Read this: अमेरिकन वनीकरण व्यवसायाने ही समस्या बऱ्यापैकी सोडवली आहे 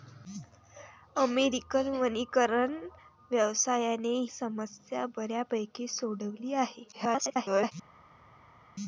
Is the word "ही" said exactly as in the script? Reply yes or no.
no